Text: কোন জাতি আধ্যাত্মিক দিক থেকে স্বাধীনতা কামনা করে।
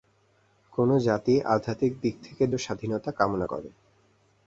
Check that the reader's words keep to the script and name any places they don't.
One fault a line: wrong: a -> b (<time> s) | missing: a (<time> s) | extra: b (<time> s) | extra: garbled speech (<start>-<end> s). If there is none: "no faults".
no faults